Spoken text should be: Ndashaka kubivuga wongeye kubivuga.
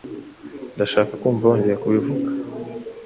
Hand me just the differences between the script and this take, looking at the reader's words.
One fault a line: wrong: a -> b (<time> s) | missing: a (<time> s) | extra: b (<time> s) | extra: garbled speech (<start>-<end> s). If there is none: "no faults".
wrong: kubivuga -> kumva (1.2 s)